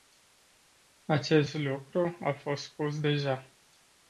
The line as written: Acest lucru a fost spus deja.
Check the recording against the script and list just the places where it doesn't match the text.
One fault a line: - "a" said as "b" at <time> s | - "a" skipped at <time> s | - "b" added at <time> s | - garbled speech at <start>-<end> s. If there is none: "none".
none